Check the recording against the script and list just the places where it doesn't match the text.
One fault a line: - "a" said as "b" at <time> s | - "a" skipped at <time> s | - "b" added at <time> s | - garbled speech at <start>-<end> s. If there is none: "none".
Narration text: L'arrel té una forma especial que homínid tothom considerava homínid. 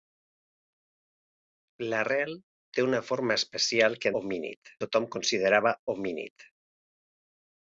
none